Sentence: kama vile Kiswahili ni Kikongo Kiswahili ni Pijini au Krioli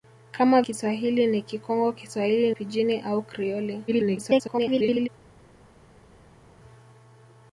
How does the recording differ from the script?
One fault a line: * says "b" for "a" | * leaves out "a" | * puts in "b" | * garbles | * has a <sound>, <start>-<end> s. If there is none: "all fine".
* leaves out "vile"
* leaves out "ni"
* garbles